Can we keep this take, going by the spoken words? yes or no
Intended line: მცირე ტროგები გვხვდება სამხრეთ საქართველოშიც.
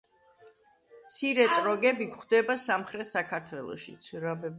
yes